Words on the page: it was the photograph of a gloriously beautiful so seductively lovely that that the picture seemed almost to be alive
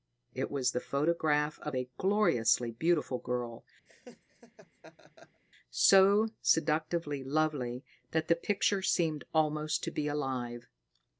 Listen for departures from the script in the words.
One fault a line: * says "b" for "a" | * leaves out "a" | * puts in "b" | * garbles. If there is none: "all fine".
* puts in "girl"
* leaves out "that"